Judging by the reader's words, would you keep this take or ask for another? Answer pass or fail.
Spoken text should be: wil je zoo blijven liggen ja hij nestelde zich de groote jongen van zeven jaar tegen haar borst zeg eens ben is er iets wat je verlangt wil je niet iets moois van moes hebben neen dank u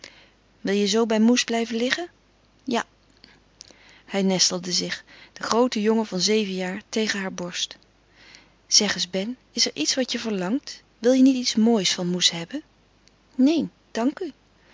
fail